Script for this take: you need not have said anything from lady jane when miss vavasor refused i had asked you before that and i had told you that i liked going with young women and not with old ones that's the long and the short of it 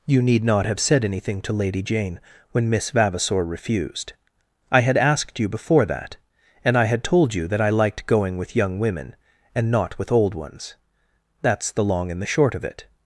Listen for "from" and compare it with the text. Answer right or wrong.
wrong